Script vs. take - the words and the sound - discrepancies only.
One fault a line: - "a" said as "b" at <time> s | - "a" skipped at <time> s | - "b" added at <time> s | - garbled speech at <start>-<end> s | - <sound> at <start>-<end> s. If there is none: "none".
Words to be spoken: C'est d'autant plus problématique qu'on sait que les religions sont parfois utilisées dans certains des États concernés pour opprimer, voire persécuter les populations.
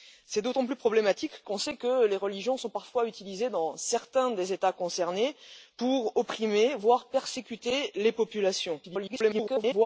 - garbled speech at 8.8-9.9 s